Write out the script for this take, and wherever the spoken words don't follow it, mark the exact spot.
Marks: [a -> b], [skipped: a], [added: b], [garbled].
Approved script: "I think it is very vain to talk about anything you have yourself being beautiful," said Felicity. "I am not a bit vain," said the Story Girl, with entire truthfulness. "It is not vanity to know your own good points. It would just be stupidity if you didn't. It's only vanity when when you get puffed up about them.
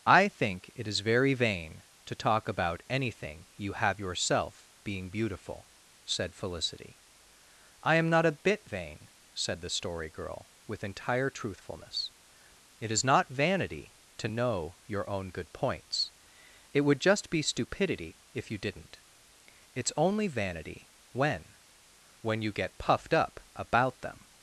"I think it is very vain to talk about anything you have yourself being beautiful," said Felicity. "I am not a bit vain," said the Story Girl, with entire truthfulness. "It is not vanity to know your own good points. It would just be stupidity if you didn't. It's only vanity when when you get puffed up about them.